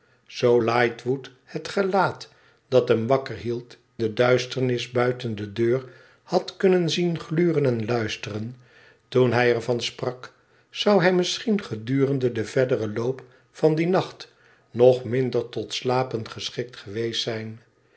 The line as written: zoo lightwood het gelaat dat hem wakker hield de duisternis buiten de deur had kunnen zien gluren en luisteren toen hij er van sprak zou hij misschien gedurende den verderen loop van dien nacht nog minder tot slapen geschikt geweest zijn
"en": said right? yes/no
yes